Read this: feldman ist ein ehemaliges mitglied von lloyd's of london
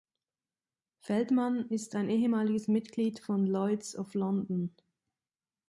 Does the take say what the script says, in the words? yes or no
yes